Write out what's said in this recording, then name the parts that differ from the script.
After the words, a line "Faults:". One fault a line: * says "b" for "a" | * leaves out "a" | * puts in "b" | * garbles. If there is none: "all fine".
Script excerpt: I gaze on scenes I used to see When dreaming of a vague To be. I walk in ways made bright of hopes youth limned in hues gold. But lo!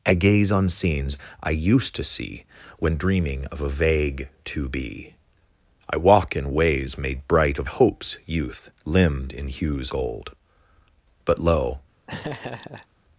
I gaze on scenes I used to see When dreaming of a vague To be. I walk in ways made bright of hopes youth limned in hues gold. But lo!
Faults:
all fine